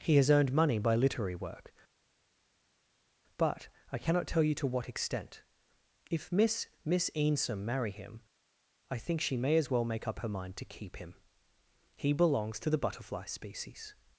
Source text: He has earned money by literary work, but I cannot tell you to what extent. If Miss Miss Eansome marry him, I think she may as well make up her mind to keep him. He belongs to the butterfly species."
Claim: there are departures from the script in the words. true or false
false